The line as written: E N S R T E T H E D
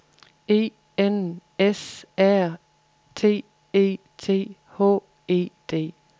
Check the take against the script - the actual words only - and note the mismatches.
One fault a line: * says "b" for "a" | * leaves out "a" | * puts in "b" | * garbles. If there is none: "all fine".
all fine